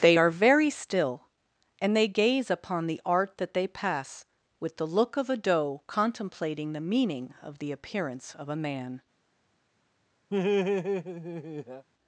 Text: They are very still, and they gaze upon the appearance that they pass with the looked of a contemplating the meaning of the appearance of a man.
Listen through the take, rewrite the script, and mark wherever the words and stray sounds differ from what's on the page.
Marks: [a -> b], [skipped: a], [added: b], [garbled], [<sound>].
They are very still, and they gaze upon the [appearance -> art] that they pass with the [looked -> look] of a [added: doe] contemplating the meaning of the appearance of a man. [laugh]